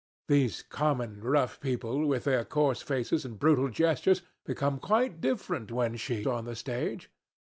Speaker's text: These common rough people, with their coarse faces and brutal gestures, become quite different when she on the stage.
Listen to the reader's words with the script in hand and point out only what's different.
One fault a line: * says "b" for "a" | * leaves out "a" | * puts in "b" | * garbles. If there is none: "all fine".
all fine